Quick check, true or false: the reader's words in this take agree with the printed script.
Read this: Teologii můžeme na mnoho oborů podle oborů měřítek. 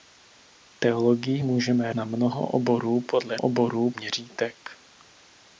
true